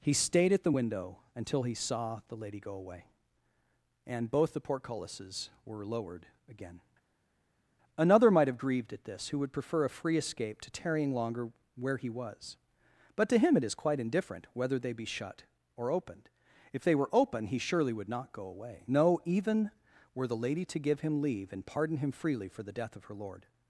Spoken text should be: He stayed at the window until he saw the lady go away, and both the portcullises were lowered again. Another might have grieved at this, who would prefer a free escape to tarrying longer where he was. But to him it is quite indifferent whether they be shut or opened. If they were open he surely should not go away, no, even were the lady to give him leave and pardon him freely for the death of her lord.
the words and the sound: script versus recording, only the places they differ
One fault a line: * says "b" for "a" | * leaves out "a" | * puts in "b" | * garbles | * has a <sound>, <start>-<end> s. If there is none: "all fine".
* says "would" for "should"